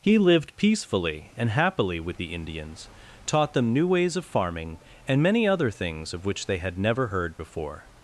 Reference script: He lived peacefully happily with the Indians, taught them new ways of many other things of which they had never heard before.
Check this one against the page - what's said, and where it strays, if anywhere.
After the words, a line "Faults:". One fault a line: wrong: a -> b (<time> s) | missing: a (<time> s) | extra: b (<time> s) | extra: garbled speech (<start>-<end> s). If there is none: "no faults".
He lived peacefully and happily with the Indians, taught them new ways of farming and many other things of which they had never heard before.
Faults:
extra: and (1.4 s)
extra: farming and (4.2 s)